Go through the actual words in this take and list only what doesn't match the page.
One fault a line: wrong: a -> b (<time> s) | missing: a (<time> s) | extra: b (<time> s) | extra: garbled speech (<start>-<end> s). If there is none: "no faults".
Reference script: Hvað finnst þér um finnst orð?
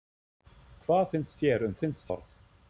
no faults